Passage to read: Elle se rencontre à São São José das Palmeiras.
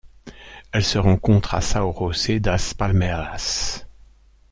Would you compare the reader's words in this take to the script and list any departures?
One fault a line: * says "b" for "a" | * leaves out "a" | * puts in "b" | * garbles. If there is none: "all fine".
* leaves out "São"